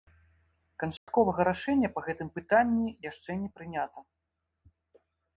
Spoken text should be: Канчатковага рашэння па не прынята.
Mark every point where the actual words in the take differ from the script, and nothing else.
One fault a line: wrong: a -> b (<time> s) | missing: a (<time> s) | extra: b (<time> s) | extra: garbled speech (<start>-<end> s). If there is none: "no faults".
extra: гэтым пытанні яшчэ (2.1 s)